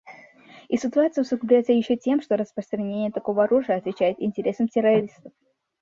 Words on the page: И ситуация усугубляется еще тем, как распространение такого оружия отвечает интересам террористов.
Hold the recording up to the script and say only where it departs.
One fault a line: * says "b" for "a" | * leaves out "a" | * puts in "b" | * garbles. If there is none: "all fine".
* says "что" for "как"